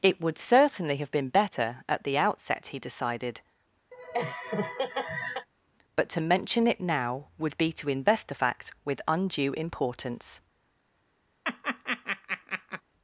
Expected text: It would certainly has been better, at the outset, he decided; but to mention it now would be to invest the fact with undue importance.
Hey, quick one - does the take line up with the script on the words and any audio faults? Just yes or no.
no